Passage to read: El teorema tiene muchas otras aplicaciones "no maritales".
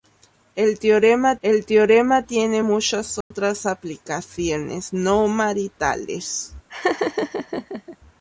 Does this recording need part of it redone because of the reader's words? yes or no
yes